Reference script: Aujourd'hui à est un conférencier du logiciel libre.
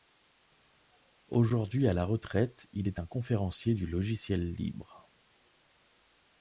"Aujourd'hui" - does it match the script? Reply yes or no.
yes